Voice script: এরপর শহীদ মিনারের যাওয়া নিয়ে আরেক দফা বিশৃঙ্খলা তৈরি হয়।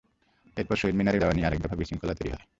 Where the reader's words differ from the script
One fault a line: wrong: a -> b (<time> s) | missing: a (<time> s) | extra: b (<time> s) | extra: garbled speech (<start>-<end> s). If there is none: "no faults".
no faults